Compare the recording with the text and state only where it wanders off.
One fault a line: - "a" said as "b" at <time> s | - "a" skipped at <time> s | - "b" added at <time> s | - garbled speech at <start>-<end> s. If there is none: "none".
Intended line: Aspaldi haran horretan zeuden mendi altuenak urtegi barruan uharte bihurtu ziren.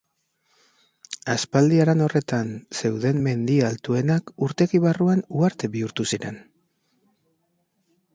none